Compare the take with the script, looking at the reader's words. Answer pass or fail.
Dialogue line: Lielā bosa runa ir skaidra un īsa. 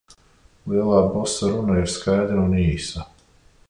pass